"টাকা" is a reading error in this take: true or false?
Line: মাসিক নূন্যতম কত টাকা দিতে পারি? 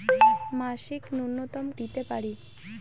true